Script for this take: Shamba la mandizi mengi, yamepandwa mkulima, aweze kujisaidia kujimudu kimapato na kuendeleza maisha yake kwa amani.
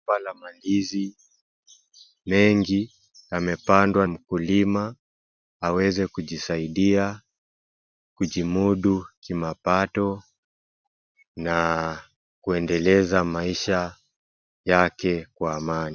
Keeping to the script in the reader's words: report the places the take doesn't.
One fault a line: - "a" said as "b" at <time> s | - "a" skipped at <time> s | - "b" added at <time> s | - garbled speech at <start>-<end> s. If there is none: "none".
none